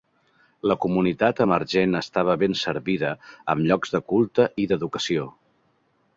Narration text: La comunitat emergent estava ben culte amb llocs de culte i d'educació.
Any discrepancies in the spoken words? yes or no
yes